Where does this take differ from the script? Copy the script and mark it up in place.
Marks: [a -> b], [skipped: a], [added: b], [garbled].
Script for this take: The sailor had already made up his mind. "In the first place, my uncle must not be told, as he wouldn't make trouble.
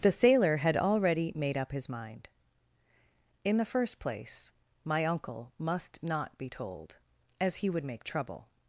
The sailor had already made up his mind. "In the first place, my uncle must not be told, as he [wouldn't -> would] make trouble.